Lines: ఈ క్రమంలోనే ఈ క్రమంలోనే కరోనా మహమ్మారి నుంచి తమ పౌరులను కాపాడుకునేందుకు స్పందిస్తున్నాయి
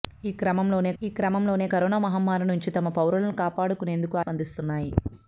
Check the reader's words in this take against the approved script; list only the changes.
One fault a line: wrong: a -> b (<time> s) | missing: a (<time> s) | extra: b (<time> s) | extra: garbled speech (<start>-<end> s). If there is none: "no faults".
no faults